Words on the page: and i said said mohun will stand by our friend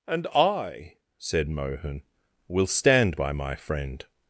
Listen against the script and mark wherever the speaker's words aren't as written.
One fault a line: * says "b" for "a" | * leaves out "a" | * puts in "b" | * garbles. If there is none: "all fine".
* leaves out "said"
* says "my" for "our"